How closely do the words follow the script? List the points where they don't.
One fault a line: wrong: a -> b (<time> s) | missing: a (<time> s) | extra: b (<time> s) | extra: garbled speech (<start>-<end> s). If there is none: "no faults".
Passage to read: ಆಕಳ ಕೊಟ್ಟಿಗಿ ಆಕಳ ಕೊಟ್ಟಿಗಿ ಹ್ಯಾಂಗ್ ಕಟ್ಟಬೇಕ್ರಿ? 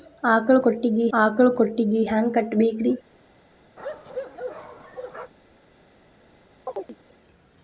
no faults